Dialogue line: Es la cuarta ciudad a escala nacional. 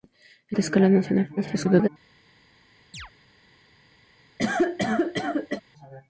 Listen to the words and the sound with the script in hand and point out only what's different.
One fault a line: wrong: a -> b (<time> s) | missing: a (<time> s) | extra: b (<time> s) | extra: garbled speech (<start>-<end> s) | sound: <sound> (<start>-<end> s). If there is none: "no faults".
missing: la cuarta ciudad (0.6 s)
extra: garbled speech (1.4-1.9 s)
sound: chirp (2.9-3.1 s)
sound: cough (4.4-5.6 s)